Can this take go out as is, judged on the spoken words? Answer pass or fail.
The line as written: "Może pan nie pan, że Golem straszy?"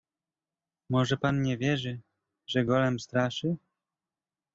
fail